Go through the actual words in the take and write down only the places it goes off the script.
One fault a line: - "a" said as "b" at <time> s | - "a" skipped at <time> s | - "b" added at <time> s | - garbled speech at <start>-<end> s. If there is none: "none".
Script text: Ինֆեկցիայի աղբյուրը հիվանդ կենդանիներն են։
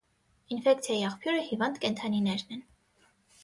none